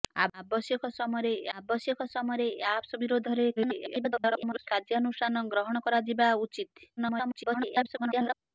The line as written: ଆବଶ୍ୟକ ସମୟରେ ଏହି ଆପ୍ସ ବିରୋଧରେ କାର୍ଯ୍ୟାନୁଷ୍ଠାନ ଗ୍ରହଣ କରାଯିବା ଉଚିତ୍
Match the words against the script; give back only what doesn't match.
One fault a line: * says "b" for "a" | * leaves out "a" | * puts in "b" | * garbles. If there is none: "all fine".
* puts in "ଆବଶ୍ୟକ ସମୟରେ ଏହି"
* garbles
* garbles